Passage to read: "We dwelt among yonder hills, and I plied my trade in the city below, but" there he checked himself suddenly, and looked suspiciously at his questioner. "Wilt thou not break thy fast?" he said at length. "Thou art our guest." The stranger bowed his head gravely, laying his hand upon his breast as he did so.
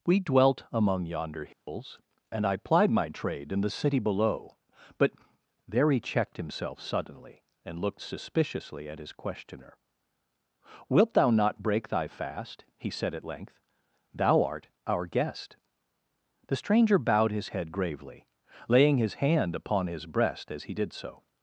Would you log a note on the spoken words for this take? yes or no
no